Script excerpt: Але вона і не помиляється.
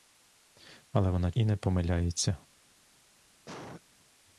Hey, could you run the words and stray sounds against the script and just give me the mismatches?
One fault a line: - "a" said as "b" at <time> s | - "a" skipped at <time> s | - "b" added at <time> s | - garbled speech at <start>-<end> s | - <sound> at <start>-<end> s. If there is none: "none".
- cough at 3.5-3.8 s